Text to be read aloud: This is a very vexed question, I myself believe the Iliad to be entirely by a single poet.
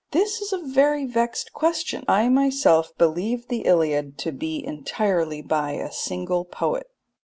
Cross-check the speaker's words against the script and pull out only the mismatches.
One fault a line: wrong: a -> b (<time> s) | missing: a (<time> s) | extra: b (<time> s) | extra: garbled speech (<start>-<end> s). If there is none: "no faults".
no faults